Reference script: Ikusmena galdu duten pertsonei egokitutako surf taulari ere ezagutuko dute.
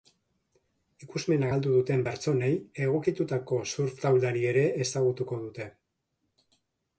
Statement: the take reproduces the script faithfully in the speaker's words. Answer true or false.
true